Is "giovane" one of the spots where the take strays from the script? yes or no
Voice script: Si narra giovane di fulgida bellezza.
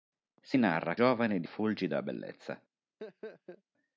no